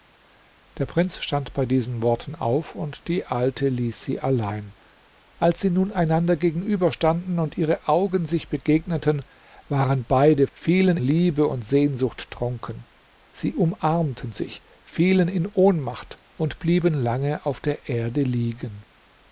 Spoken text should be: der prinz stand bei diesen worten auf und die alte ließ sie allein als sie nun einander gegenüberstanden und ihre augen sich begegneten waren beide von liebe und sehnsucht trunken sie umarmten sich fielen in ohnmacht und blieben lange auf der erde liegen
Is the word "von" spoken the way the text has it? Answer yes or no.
no